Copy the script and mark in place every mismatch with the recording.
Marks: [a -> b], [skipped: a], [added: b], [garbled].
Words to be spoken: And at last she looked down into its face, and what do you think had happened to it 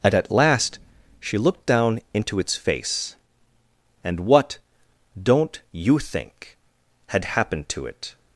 And at last she looked down into its face, and what [do -> don't] you think had happened to it